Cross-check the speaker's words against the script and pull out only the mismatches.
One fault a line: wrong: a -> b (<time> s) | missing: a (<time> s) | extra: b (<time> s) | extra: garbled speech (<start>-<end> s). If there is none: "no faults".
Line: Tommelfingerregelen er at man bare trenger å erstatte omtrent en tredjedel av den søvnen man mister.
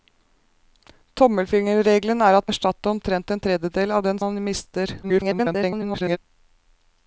missing: man bare trenger (2.5 s)
missing: søvnen (4.2 s)
extra: garbled speech (5.0-6.2 s)